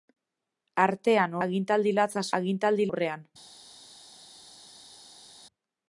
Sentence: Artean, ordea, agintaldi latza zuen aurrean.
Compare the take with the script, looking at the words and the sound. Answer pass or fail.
fail